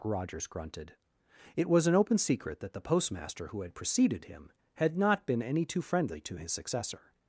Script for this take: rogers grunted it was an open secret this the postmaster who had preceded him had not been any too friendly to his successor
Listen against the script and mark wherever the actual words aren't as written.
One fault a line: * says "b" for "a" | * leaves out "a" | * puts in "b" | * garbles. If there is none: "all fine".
* says "that" for "this"